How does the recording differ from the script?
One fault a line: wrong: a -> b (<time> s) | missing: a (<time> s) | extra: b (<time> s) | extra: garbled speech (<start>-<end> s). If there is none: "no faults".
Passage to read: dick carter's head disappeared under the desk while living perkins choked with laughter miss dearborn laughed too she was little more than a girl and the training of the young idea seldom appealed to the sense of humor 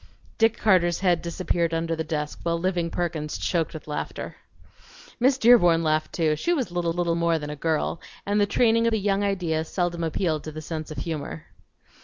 extra: little (6.9 s)
missing: of (8.9 s)